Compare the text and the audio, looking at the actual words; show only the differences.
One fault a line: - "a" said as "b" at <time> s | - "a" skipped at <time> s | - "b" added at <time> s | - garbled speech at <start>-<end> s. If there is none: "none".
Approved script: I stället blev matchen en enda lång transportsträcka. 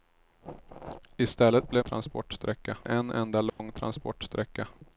- "matchen" said as "transportsträcka" at 1.8 s